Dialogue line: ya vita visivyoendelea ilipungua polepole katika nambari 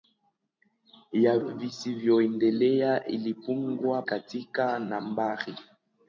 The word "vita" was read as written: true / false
false